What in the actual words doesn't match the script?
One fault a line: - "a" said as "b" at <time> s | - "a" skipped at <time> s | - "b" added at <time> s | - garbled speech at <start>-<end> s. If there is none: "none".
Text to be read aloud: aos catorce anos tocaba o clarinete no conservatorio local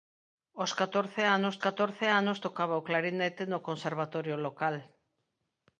- "catorce anos" added at 1.6 s